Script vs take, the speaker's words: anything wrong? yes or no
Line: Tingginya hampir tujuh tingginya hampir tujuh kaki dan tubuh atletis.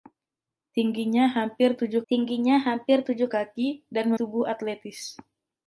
no